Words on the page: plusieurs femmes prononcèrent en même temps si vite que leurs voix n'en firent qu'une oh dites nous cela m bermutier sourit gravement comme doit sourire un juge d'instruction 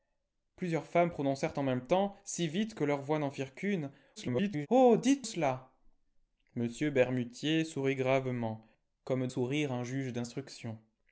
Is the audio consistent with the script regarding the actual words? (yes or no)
no